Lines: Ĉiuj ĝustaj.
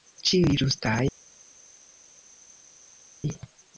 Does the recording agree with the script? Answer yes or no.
yes